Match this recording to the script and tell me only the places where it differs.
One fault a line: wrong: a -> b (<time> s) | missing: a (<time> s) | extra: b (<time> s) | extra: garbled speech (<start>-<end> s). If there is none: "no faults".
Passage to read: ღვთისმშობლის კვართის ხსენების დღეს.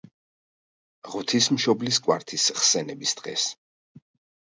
no faults